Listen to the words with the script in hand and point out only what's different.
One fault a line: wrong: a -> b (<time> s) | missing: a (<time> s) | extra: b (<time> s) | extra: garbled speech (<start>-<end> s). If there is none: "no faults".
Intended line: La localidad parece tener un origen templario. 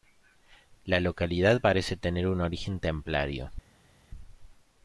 no faults